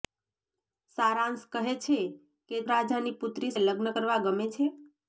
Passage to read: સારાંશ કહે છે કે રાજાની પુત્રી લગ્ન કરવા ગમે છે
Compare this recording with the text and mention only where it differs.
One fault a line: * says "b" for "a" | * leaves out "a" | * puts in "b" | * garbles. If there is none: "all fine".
all fine